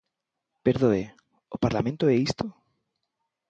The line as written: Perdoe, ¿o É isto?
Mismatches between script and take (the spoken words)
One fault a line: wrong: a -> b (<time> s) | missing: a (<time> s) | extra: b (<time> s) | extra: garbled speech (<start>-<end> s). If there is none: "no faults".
extra: Parlamento (1.6 s)